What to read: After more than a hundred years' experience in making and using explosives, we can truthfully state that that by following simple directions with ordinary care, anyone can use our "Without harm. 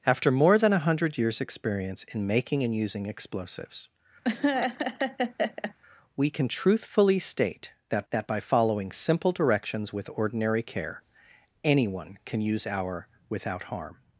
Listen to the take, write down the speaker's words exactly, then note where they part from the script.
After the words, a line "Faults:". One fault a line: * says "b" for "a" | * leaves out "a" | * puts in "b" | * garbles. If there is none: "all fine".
After more than a hundred years' experience in making and using explosives, we can truthfully state that that by following simple directions with ordinary care, anyone can use our "Without harm.
Faults:
all fine